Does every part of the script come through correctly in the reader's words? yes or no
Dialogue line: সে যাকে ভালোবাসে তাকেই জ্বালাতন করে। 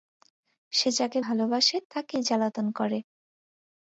yes